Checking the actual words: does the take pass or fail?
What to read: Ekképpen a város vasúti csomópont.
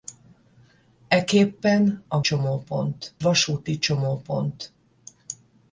fail